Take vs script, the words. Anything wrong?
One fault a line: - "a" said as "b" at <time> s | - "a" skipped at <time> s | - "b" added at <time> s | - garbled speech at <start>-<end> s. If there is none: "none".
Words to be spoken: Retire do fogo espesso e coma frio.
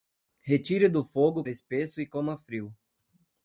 none